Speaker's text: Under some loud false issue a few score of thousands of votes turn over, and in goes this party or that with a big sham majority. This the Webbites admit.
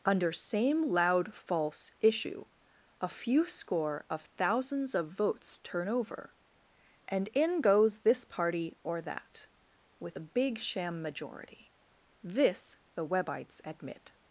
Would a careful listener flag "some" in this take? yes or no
yes